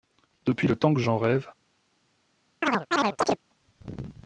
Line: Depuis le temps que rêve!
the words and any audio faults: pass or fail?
fail